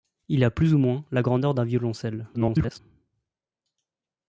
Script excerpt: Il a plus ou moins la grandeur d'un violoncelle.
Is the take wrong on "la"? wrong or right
right